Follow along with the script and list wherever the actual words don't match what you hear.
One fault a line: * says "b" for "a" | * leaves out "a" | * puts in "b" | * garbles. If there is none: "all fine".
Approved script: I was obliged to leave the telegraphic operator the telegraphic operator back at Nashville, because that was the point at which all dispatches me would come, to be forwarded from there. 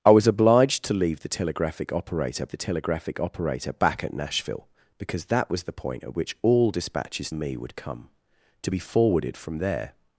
all fine